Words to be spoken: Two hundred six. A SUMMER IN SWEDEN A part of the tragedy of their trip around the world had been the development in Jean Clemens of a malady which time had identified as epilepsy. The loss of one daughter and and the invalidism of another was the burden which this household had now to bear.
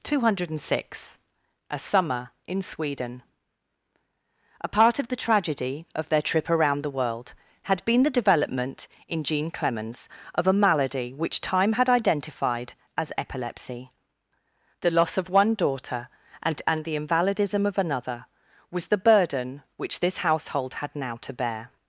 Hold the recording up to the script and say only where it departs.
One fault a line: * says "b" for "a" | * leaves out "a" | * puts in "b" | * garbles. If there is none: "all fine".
all fine